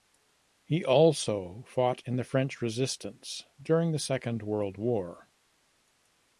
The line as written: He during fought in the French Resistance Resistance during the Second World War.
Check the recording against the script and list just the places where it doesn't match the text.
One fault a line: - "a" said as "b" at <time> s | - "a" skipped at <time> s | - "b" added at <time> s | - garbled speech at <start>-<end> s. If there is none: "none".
- "during" said as "also" at 0.8 s
- "Resistance" skipped at 3.4 s